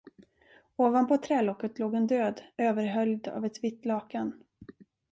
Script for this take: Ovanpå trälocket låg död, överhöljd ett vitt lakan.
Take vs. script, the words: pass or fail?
fail